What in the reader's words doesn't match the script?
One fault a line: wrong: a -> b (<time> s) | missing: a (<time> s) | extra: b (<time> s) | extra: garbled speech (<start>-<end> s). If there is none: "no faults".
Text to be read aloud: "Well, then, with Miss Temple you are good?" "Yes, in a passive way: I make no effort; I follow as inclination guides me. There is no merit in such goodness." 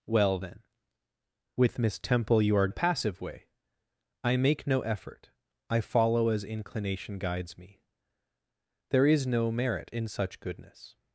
missing: good Yes in (2.7 s)